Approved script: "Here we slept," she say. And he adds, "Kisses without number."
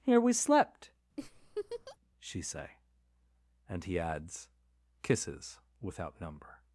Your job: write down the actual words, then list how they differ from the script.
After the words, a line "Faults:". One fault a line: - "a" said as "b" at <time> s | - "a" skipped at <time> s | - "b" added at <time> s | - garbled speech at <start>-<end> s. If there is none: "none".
"Here we slept," she say. And he adds, "Kisses without number."
Faults:
none